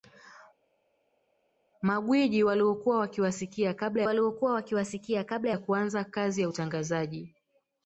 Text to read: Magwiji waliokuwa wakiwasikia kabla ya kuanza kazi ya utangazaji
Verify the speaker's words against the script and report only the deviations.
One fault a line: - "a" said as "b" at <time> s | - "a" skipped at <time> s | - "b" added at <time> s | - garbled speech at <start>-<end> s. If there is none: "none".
- "waliokuwa wakiwasikia kabla" added at 4.0 s